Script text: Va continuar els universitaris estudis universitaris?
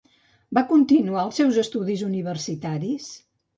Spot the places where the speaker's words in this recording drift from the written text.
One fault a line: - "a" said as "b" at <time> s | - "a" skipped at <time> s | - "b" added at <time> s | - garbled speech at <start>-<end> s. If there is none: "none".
- "universitaris" said as "seus" at 1.4 s